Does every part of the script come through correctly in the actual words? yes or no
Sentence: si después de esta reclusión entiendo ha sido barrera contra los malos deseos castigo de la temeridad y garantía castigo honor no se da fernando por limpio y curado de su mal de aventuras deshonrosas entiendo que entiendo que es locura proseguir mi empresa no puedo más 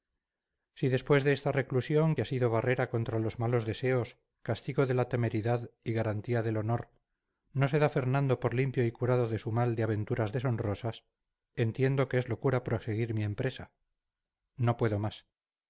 no